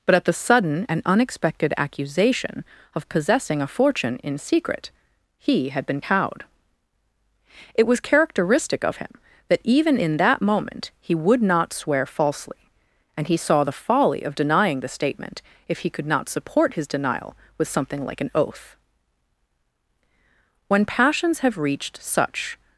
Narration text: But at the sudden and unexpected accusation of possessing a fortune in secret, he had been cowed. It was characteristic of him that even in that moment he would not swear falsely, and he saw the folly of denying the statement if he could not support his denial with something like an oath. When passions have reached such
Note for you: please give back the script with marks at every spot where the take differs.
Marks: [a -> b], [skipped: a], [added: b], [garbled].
But at the sudden and unexpected accusation of possessing a fortune in secret, he had been cowed. It was characteristic of him that even in that moment he would not swear falsely, and he saw the folly of denying the statement if he could not support his denial with something like an oath. When passions have reached such